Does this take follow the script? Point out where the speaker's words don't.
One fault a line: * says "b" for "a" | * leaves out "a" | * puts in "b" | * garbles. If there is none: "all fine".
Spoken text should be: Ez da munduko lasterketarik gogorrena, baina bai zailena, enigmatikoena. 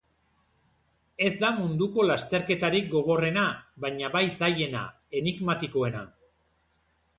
all fine